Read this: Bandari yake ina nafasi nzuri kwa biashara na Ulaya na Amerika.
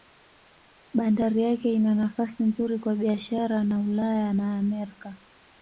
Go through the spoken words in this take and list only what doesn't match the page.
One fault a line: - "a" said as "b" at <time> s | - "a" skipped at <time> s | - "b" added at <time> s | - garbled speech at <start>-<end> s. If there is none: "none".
none